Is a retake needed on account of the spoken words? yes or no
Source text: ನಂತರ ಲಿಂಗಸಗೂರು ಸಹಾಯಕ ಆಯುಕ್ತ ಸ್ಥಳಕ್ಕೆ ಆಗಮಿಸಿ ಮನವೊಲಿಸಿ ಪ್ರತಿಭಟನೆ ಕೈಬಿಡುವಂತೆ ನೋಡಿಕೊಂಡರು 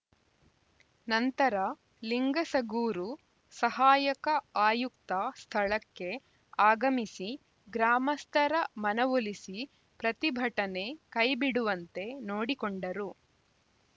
yes